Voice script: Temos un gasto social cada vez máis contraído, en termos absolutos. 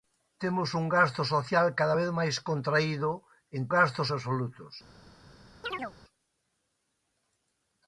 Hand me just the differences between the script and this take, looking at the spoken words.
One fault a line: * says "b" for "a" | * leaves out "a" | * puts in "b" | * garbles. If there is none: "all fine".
* says "gasto" for "termos"